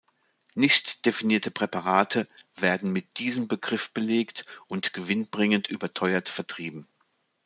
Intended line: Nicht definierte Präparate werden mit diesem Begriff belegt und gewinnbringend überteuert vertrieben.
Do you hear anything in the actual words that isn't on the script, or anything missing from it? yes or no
no